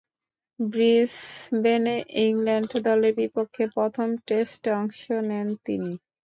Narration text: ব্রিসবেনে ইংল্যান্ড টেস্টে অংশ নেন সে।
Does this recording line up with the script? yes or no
no